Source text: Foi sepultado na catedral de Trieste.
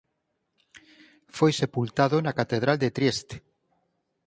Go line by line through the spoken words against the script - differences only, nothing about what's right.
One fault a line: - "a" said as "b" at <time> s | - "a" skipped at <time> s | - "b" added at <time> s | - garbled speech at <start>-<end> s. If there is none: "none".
none